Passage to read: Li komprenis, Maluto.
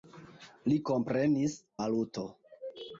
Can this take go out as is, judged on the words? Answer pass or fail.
pass